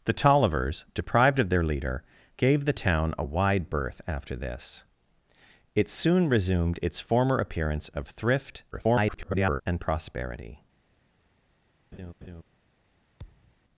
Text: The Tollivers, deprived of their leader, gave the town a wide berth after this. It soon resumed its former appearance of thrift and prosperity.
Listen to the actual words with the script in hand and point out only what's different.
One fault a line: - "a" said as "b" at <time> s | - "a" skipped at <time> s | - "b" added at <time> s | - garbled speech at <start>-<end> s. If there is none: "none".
- garbled speech at 8.7-9.6 s